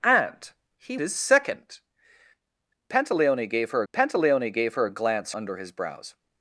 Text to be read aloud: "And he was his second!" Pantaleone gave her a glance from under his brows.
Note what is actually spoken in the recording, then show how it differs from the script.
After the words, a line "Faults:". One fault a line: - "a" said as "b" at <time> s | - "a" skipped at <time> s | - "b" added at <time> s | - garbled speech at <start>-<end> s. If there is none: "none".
"And he his second!" Pantaleone gave her pantaleone gave her a glance under his brows.
Faults:
- "was" skipped at 1.0 s
- "pantaleone gave her" added at 3.9 s
- "from" skipped at 5.3 s